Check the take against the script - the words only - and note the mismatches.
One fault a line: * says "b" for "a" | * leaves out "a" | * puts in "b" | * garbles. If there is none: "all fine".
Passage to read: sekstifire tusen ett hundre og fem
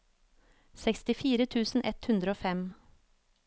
all fine